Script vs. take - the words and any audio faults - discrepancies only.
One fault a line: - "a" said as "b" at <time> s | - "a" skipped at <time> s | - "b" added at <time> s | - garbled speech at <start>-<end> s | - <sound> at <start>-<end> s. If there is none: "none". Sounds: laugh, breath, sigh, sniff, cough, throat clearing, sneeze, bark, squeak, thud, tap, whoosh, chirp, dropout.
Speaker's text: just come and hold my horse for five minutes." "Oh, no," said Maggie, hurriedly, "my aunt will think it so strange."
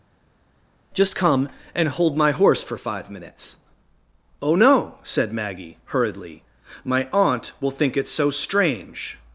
none